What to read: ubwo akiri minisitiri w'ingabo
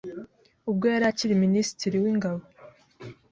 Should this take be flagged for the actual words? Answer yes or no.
yes